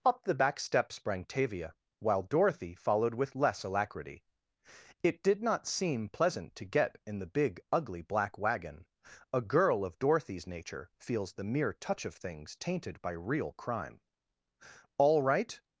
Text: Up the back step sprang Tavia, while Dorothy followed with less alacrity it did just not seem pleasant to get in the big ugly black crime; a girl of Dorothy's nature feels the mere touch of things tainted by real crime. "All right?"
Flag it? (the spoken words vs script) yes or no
yes